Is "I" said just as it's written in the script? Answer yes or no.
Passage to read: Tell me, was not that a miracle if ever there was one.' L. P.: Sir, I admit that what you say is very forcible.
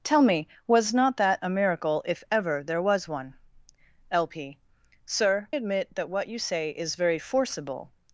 no